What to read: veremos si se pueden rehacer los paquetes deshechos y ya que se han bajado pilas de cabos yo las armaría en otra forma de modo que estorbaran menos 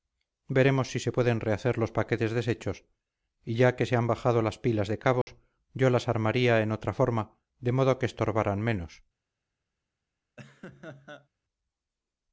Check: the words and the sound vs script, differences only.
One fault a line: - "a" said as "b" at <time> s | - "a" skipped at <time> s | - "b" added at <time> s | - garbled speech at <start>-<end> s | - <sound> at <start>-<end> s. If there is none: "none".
- "las" added at 4.4 s
- dropout at 5.2-5.3 s
- laugh at 10.4-11.3 s